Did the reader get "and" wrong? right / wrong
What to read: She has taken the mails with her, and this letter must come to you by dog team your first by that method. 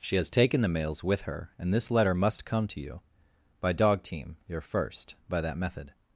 right